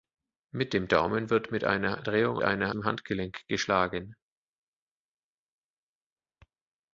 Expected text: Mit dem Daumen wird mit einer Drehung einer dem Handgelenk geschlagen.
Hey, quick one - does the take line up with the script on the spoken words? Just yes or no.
yes